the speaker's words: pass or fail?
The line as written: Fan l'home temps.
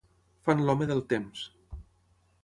fail